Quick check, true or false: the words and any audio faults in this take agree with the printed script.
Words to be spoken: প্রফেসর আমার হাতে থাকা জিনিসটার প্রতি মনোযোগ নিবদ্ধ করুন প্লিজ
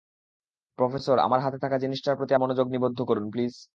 true